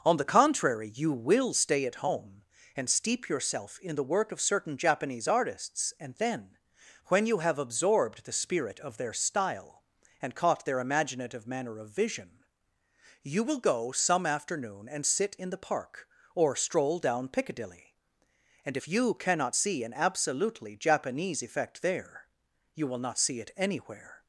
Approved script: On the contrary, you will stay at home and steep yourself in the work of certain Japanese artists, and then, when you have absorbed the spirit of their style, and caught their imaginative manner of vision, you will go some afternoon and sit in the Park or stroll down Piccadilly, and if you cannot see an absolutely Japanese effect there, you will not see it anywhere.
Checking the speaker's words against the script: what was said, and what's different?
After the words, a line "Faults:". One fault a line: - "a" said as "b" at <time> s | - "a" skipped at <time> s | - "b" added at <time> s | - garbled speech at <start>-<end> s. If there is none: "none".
On the contrary, you will stay at home and steep yourself in the work of certain Japanese artists, and then, when you have absorbed the spirit of their style, and caught their imaginative manner of vision, you will go some afternoon and sit in the Park or stroll down Piccadilly, and if you cannot see an absolutely Japanese effect there, you will not see it anywhere.
Faults:
none